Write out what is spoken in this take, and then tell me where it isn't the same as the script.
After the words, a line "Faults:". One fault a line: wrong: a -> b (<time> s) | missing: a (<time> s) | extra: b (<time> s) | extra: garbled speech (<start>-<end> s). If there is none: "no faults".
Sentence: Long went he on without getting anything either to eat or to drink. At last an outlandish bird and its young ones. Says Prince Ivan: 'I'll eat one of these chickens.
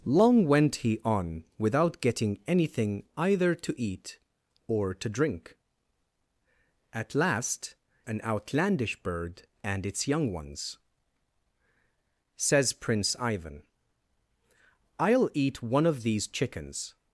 Long went he on without getting anything either to eat or to drink. At last an outlandish bird and its young ones. Says Prince Ivan: 'I'll eat one of these chickens.
Faults:
no faults